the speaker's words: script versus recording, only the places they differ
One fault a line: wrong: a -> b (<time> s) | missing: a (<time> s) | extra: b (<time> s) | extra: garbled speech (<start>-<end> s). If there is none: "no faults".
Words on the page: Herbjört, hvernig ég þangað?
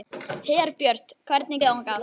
no faults